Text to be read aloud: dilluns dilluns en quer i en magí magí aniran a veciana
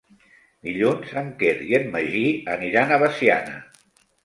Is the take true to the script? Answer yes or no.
no